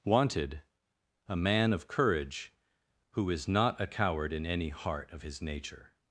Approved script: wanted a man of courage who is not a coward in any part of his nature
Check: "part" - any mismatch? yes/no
yes